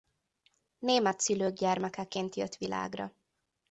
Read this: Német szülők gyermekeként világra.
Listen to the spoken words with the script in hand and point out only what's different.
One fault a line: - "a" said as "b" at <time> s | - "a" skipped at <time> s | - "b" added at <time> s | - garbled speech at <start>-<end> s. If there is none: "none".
- "jött" added at 2.4 s